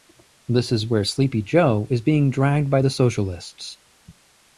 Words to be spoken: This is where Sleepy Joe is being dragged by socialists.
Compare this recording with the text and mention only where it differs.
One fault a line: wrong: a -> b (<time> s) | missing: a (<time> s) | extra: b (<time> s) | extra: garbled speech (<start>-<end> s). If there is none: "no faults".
extra: the (2.8 s)